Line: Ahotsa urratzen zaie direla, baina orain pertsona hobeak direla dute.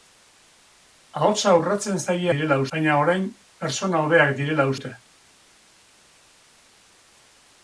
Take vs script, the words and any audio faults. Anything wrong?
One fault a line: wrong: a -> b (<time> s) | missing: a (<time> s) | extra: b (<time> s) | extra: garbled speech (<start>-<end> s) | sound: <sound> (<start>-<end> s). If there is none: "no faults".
no faults